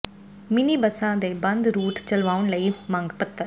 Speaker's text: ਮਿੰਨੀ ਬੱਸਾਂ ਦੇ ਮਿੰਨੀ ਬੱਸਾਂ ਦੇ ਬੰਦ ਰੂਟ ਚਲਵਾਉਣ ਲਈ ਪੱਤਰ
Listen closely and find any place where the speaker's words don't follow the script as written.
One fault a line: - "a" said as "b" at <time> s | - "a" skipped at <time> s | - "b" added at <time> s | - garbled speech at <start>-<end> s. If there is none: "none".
- "ਮਿੰਨੀ ਬੱਸਾਂ ਦੇ" skipped at 1.3 s
- "ਮੰਗ" added at 2.9 s